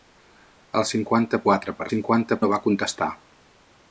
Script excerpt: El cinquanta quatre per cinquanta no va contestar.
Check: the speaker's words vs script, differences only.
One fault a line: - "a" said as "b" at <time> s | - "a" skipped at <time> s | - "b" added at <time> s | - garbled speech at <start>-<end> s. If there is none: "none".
none